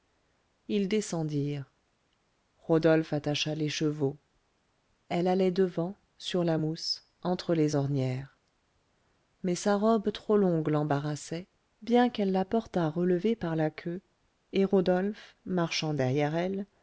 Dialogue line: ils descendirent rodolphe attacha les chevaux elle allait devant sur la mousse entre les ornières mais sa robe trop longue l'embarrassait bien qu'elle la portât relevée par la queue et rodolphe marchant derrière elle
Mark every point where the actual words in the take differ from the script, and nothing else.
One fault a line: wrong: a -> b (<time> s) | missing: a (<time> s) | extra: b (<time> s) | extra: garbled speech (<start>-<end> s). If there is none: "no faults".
no faults